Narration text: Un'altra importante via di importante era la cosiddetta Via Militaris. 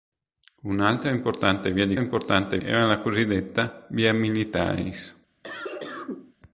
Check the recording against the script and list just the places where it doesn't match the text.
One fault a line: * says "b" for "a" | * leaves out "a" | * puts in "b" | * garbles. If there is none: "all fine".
all fine